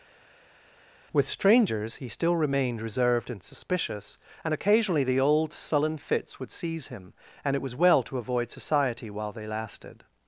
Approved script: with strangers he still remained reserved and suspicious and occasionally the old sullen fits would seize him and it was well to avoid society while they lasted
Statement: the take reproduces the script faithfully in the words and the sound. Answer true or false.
true